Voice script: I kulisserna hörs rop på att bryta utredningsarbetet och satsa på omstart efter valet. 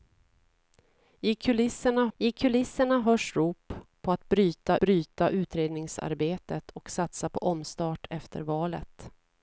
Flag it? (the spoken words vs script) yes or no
yes